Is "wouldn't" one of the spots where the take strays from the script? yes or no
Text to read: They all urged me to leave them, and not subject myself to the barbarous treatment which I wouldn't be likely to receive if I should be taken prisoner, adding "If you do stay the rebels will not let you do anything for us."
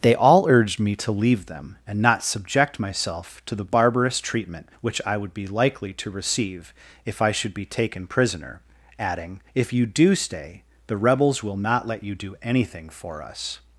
yes